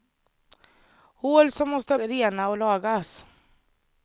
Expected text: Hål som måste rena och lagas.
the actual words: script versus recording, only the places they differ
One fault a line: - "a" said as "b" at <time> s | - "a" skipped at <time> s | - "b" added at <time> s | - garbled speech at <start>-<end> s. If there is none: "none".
none